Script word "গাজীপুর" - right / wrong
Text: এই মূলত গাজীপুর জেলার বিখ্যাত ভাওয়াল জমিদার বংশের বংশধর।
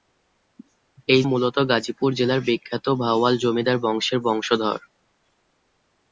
right